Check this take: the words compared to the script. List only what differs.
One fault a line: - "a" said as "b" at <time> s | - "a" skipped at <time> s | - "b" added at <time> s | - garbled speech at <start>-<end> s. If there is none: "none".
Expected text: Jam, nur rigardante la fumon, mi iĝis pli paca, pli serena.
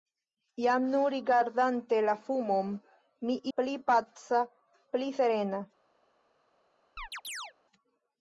- "iĝis" skipped at 3.4 s